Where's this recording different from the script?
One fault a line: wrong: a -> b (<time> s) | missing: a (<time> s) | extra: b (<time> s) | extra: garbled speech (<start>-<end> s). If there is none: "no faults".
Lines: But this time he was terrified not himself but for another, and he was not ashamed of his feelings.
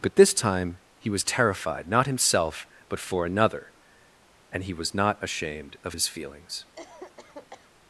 no faults